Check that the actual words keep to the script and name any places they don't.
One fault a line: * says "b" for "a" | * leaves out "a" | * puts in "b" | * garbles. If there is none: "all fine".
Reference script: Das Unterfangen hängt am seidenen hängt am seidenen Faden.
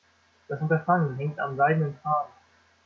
* leaves out "hängt am seidenen"